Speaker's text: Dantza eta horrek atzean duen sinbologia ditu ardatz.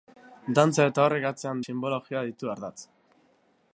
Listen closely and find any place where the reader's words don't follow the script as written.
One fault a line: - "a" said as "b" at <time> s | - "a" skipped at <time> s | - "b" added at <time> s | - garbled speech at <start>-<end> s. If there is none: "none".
- "duen" skipped at 1.6 s